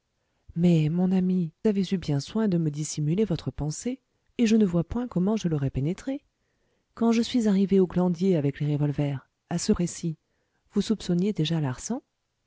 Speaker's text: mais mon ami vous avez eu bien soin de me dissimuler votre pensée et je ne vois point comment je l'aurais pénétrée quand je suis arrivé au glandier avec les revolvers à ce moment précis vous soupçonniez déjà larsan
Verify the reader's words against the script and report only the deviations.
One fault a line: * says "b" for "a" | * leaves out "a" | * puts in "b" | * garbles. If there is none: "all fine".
* leaves out "vous"
* leaves out "moment"